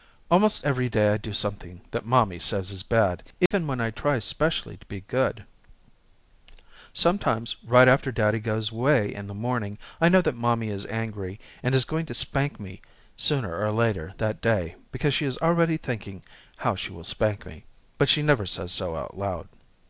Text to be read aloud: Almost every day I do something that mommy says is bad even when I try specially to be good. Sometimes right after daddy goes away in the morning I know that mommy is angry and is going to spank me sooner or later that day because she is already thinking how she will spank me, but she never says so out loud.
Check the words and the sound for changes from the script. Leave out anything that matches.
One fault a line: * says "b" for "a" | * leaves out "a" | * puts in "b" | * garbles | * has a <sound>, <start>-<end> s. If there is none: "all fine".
* has a dropout, 3.5-3.5 s